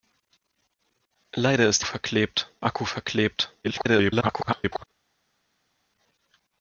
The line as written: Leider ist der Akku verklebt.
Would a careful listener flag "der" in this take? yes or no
yes